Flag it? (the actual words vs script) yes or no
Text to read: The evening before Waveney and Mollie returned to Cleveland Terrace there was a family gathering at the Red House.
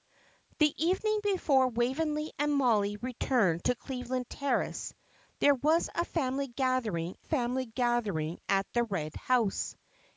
yes